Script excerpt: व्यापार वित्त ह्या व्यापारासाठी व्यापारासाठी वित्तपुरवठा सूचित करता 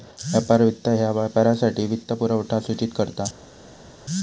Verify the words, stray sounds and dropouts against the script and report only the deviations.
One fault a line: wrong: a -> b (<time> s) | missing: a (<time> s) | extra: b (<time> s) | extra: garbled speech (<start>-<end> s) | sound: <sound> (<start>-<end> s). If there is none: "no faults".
missing: व्यापारासाठी (1.9 s)